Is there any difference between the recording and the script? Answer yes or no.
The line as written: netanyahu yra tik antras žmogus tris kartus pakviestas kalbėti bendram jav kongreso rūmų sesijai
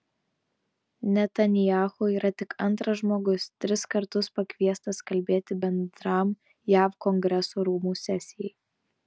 no